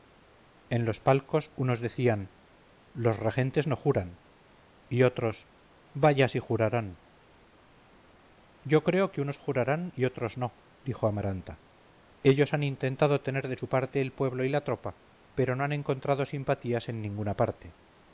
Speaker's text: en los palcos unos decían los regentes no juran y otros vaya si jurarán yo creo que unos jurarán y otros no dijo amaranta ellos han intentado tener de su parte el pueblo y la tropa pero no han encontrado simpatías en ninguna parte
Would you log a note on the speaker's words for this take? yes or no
no